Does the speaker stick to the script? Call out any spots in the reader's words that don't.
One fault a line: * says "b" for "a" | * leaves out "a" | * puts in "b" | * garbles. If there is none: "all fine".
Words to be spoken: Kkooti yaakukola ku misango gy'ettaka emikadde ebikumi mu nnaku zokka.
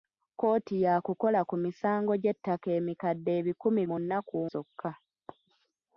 all fine